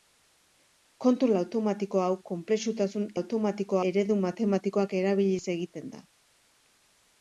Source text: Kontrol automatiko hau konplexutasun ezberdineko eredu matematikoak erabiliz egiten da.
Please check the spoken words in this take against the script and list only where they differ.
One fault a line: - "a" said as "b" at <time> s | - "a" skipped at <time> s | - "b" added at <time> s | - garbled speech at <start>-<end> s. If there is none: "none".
- "ezberdineko" said as "automatiko" at 3.2 s